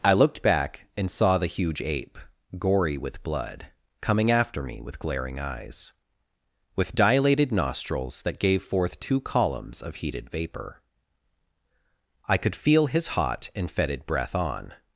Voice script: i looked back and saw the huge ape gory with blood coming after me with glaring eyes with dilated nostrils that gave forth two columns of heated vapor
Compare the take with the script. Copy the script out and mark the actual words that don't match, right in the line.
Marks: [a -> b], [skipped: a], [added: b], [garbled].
i looked back and saw the huge ape gory with blood coming after me with glaring eyes with dilated nostrils that gave forth two columns of heated vapor [added: i could feel his hot and fetid breath on]